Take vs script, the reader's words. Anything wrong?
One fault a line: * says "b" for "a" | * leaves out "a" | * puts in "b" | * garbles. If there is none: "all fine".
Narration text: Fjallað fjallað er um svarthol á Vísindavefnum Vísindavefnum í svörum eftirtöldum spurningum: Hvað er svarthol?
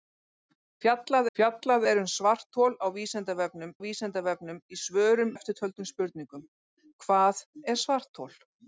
all fine